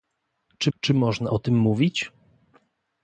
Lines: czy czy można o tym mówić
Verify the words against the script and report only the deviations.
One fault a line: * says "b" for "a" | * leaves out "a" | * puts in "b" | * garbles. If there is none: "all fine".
all fine